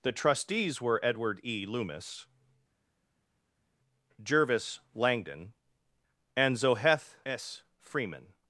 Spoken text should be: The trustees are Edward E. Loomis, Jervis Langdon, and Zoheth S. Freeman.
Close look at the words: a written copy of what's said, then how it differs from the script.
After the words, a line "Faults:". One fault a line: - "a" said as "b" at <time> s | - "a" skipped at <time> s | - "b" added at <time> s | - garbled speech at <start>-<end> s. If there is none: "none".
The trustees were Edward E. Loomis, Jervis Langdon, and Zoheth S. Freeman.
Faults:
- "are" said as "were" at 0.8 s